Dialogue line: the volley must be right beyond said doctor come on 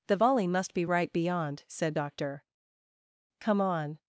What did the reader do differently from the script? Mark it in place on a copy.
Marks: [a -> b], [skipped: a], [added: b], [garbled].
the volley must be right beyond said doctor come on